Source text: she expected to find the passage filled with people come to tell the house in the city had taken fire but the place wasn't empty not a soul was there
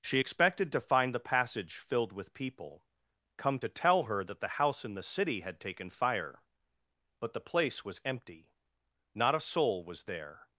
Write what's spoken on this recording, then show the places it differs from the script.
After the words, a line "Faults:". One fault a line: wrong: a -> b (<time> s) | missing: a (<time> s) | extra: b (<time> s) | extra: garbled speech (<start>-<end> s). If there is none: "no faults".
she expected to find the passage filled with people come to tell her that the house in the city had taken fire but the place was empty not a soul was there
Faults:
extra: her that (4.0 s)
wrong: wasn't -> was (7.8 s)